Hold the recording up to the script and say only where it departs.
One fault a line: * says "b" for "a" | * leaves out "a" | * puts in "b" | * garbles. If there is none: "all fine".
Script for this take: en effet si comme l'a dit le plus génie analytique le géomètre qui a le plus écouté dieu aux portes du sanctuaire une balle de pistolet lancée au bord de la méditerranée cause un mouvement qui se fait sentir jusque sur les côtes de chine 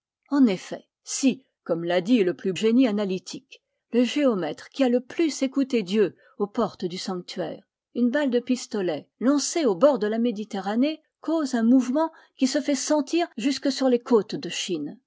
all fine